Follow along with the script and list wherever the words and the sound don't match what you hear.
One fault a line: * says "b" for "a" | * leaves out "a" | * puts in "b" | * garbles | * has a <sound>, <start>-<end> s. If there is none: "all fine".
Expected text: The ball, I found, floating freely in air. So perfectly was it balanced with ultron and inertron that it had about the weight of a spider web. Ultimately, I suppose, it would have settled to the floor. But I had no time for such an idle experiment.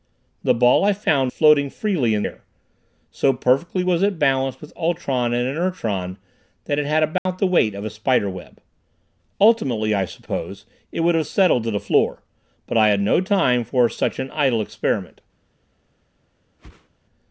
* has a dropout, 7.2-7.3 s
* has a whoosh, 16.6-16.9 s